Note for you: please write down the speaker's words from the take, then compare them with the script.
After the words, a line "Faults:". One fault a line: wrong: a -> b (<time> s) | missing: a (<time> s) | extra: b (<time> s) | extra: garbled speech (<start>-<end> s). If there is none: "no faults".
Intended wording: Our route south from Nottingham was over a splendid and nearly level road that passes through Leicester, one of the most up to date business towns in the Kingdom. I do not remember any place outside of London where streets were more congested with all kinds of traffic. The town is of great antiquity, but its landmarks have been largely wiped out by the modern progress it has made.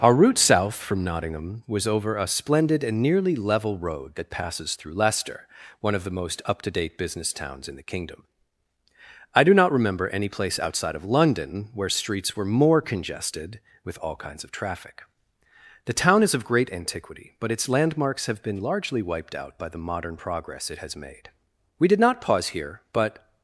Our route south from Nottingham was over a splendid and nearly level road that passes through Leicester, one of the most up to date business towns in the Kingdom. I do not remember any place outside of London where streets were more congested with all kinds of traffic. The town is of great antiquity, but its landmarks have been largely wiped out by the modern progress it has made. We did not pause here, but
Faults:
extra: We did not pause here but (21.8 s)